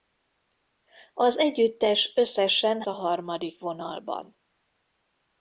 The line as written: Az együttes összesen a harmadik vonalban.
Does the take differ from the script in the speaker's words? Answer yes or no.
no